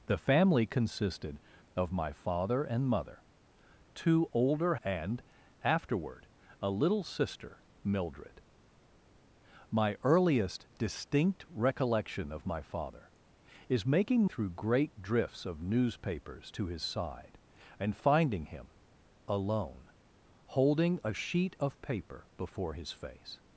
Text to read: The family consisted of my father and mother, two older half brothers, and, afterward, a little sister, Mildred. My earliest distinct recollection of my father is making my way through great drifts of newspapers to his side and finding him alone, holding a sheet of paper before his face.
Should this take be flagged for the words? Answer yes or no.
yes